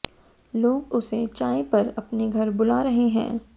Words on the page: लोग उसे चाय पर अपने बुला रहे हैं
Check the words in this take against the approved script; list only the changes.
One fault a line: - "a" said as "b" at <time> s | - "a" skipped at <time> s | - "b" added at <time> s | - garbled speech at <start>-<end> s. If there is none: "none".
- "घर" added at 2.3 s